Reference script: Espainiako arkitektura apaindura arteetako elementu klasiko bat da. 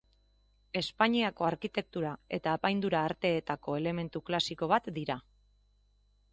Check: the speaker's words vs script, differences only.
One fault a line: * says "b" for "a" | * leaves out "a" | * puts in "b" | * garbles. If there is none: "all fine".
* puts in "eta"
* says "dira" for "da"